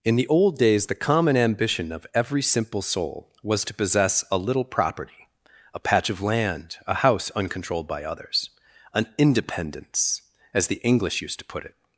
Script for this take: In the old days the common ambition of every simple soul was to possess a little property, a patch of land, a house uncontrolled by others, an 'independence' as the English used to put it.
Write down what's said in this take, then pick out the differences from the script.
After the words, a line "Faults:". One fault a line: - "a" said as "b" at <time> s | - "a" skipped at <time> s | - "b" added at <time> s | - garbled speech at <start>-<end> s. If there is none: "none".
In the old days the common ambition of every simple soul was to possess a little property, a patch of land, a house uncontrolled by others, an 'independence' as the English used to put it.
Faults:
none